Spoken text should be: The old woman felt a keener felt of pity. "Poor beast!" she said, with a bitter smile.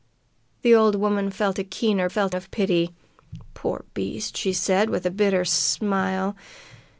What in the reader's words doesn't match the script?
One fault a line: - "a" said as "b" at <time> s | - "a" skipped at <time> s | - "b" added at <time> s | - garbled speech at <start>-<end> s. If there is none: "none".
none